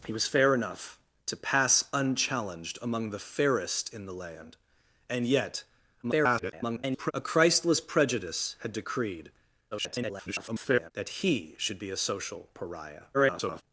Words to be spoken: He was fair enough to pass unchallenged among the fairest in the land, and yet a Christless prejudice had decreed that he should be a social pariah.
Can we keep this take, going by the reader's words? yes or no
no